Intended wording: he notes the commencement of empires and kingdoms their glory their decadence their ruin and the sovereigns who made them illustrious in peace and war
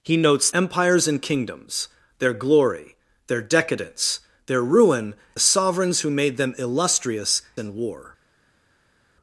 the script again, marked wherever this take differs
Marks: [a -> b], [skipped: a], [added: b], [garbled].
he notes [skipped: the commencement of] empires and kingdoms their glory their decadence their ruin [skipped: and] the sovereigns who made them illustrious [skipped: in peace] and war